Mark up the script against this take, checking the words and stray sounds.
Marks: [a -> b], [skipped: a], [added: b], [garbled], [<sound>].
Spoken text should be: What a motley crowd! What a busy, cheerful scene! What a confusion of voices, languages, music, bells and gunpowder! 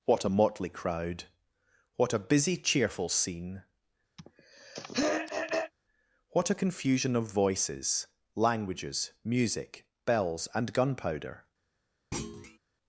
What a motley crowd! What a busy, cheerful scene! [throat clearing] What a confusion of voices, languages, music, bells and gunpowder! [thud]